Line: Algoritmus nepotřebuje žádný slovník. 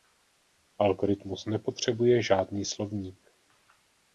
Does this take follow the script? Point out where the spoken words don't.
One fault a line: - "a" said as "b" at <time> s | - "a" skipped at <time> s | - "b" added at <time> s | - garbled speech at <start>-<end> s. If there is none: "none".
none